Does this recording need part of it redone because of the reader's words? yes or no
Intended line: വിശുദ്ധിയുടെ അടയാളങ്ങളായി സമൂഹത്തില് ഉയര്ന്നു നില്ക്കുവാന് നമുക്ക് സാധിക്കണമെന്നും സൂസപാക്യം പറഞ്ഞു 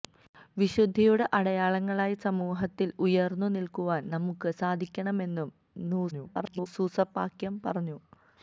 yes